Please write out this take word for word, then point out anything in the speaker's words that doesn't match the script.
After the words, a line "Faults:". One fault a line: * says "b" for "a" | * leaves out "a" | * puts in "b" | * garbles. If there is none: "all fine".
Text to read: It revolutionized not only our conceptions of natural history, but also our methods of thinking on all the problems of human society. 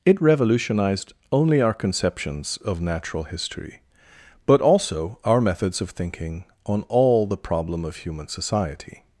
It revolutionized only our conceptions of natural history, but also our methods of thinking on all the problem of human society.
Faults:
* leaves out "not"
* says "problem" for "problems"